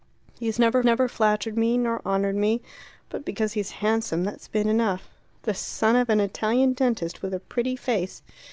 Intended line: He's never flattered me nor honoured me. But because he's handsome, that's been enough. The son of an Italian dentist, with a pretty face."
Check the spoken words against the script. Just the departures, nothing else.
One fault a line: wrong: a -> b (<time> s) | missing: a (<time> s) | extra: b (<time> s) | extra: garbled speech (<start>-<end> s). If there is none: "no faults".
extra: never (0.8 s)